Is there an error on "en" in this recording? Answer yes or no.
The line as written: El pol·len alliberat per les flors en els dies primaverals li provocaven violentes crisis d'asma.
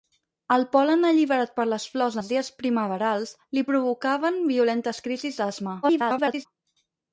yes